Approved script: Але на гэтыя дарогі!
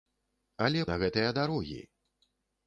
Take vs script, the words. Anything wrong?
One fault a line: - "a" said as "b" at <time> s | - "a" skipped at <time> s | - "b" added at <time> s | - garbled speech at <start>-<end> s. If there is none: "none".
none